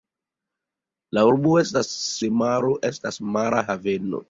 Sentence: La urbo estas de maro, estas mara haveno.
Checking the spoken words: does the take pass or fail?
pass